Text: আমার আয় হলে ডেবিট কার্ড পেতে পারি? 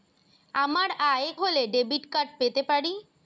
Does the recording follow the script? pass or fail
pass